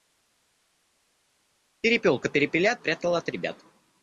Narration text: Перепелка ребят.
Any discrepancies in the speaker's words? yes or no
yes